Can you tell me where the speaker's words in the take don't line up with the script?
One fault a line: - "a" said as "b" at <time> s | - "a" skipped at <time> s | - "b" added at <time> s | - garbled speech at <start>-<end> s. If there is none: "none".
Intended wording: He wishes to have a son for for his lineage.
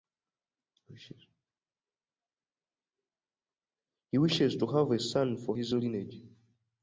- "for" skipped at 5.6 s